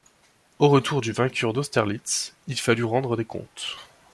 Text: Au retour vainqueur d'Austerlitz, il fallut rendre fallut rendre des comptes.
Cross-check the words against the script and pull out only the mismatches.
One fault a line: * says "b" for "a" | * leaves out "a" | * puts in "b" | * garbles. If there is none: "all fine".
* puts in "du"
* leaves out "fallut rendre"